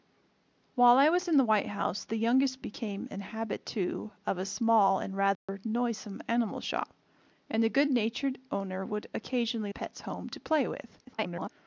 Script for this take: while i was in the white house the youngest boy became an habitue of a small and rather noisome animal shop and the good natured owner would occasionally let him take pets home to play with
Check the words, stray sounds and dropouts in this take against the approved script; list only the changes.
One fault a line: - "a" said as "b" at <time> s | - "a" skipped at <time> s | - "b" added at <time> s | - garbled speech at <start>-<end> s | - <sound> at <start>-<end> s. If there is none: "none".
- "boy" skipped at 2.6 s
- dropout at 5.3-5.5 s
- "let him take" skipped at 9.7 s
- garbled speech at 11.0-11.5 s